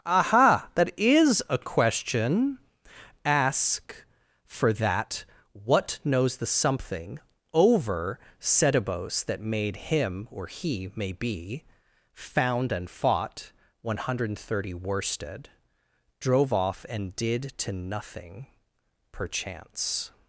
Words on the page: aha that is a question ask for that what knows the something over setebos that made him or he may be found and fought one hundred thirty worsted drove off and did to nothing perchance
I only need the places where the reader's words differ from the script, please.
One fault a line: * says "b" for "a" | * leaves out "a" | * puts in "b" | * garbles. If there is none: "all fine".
all fine